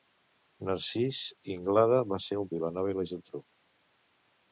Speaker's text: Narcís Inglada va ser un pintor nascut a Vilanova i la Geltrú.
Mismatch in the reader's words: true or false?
true